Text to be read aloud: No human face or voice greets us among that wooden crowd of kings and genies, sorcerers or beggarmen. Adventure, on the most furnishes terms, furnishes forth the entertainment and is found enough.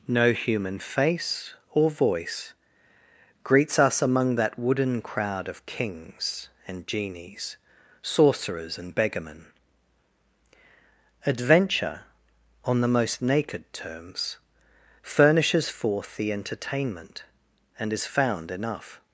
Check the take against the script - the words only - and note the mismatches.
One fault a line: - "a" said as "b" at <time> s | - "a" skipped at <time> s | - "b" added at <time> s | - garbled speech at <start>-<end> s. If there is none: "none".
- "or" said as "and" at 8.8 s
- "furnishes" said as "naked" at 13.2 s